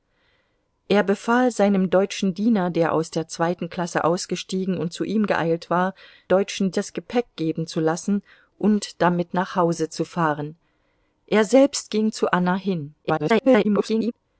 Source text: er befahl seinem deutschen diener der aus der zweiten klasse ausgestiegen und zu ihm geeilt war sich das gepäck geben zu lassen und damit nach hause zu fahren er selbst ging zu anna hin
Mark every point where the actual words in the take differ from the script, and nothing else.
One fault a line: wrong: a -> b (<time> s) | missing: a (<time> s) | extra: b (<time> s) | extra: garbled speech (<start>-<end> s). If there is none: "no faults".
wrong: sich -> deutschen (6.3 s)
extra: garbled speech (13.0-14.1 s)